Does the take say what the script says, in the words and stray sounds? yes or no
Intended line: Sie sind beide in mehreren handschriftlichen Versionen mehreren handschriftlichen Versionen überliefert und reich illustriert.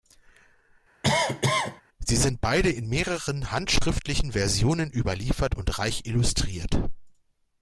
no